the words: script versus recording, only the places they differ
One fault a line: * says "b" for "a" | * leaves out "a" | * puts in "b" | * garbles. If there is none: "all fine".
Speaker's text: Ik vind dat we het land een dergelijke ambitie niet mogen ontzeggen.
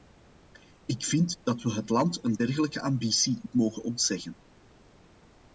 * leaves out "niet"